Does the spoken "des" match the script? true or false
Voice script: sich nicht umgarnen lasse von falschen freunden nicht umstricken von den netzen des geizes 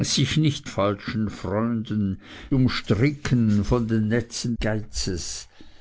false